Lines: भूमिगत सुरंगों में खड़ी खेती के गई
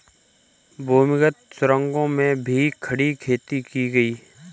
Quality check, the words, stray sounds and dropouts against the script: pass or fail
fail